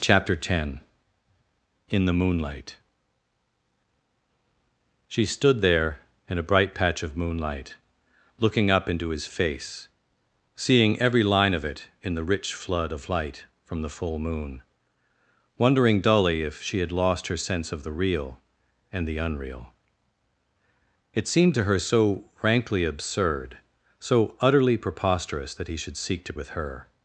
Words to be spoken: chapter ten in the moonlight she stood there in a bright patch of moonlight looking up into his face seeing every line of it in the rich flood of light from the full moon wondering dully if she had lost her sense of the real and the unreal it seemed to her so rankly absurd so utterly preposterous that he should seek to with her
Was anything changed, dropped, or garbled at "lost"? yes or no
no